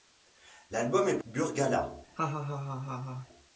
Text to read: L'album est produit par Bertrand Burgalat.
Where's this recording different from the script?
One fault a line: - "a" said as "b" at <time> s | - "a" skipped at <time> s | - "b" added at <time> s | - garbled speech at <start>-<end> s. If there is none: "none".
- "produit par Bertrand" skipped at 1.2 s